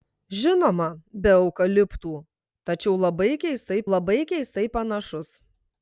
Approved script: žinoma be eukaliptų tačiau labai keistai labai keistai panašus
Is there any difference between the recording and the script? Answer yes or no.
no